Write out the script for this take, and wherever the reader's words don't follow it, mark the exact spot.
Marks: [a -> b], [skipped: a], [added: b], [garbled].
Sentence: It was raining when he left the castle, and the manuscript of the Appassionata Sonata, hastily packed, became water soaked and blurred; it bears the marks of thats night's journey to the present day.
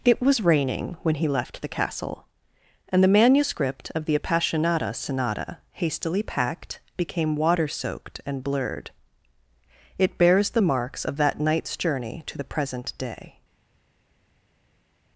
It was raining when he left the castle, and the manuscript of the Appassionata Sonata, hastily packed, became water soaked and blurred; it bears the marks of [thats -> that] night's journey to the present day.